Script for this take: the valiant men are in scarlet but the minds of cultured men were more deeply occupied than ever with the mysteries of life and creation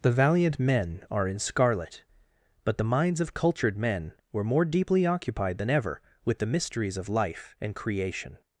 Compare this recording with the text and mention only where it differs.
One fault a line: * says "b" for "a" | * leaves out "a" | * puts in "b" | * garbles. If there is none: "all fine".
all fine